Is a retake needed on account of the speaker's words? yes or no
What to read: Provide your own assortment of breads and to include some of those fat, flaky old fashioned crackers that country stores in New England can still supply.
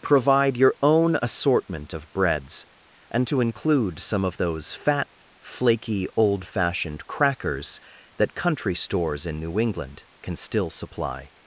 no